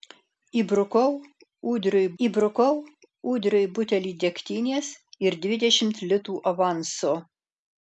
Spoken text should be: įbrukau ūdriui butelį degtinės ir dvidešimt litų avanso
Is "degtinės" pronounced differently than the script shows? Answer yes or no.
no